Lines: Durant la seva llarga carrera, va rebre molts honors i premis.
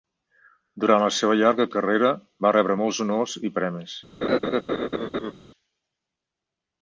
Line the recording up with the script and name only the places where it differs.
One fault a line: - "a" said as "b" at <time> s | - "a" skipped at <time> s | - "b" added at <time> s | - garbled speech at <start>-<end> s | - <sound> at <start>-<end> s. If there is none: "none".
- laugh at 4.2-5.3 s